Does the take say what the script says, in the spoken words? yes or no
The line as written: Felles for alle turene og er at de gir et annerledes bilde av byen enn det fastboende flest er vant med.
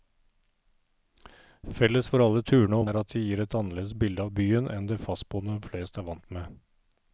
yes